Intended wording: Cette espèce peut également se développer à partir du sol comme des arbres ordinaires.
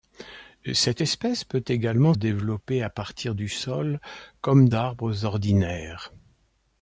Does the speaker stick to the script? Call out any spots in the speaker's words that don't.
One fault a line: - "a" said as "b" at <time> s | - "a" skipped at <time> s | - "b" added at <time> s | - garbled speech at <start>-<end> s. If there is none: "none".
- "se" skipped at 2.1 s
- "des" skipped at 4.7 s